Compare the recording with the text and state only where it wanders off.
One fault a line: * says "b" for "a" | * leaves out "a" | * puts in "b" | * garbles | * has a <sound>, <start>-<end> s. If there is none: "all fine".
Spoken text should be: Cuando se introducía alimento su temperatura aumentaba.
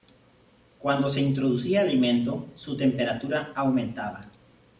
all fine